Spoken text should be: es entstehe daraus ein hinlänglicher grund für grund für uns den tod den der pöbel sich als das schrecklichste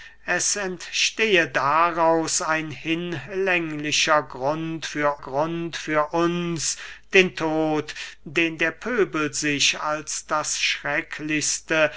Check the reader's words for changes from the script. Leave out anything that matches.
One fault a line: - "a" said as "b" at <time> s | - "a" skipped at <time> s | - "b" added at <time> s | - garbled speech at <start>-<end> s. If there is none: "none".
none